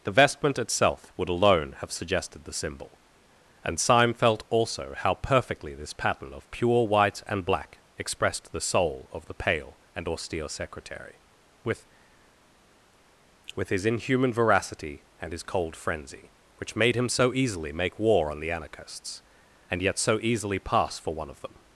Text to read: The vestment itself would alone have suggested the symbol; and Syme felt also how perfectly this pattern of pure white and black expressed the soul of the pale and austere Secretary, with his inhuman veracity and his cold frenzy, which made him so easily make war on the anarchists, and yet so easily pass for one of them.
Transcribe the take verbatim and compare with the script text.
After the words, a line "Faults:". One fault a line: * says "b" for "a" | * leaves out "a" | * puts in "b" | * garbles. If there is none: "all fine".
The vestment itself would alone have suggested the symbol; and Syme felt also how perfectly this pattern of pure white and black expressed the soul of the pale and austere Secretary, with with his inhuman veracity and his cold frenzy, which made him so easily make war on the anarchists, and yet so easily pass for one of them.
Faults:
* puts in "with"